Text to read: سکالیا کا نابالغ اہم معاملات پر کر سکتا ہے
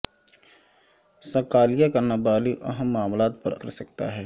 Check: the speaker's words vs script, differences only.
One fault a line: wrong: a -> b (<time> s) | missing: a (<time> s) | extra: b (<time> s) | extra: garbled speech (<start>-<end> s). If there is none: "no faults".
no faults